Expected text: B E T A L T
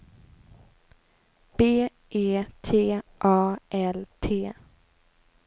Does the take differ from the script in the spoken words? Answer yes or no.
no